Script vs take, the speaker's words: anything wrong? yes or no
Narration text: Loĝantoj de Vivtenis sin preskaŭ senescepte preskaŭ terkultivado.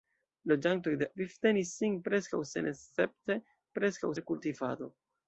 no